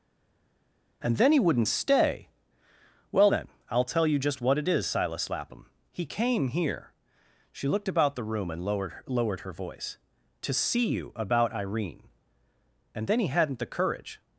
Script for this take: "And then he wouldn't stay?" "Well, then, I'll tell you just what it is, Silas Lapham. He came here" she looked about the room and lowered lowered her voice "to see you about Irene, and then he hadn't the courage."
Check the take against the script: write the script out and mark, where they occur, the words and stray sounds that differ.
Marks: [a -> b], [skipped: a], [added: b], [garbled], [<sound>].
"And then he wouldn't stay?" "Well, then, I'll tell you just what it is, Silas Lapham. He came here" she looked about the room and lowered lowered her voice "to see you about Irene, and then he hadn't the courage."